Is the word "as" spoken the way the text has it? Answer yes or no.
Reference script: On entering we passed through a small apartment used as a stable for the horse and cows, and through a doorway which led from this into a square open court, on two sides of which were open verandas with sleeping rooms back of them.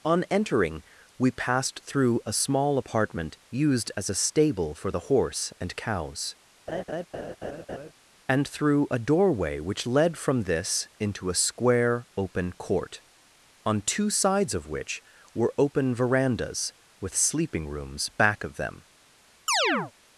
yes